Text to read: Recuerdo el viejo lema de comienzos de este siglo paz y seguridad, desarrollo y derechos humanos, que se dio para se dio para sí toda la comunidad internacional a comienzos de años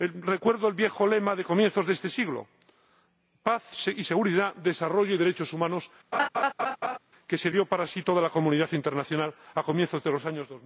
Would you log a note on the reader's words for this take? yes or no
yes